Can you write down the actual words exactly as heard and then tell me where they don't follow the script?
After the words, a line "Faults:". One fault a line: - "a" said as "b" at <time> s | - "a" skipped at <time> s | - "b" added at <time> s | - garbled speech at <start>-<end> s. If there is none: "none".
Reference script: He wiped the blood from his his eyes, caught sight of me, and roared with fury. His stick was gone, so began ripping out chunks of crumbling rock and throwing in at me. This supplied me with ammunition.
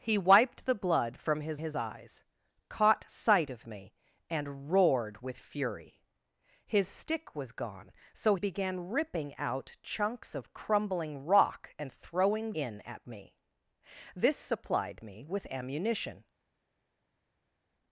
He wiped the blood from his his eyes, caught sight of me, and roared with fury. His stick was gone, so began ripping out chunks of crumbling rock and throwing in at me. This supplied me with ammunition.
Faults:
none